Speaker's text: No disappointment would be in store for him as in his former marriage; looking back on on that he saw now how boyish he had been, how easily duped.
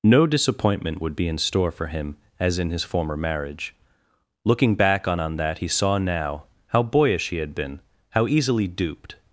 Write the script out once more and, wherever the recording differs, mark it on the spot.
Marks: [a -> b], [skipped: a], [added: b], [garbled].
No disappointment would be in store for him as in his former marriage; looking back on on that he saw now how boyish he had been, how easily duped.